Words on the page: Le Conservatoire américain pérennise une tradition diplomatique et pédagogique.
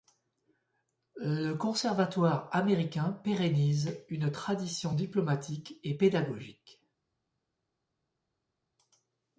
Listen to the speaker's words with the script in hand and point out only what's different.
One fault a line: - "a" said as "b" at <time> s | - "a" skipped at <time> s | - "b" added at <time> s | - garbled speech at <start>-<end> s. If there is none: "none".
none